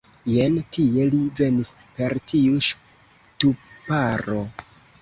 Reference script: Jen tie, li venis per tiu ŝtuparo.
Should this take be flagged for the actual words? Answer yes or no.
no